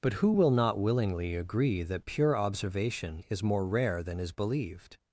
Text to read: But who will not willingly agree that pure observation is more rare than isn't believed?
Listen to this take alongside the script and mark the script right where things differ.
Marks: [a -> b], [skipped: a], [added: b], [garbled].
But who will not willingly agree that pure observation is more rare than [isn't -> is] believed?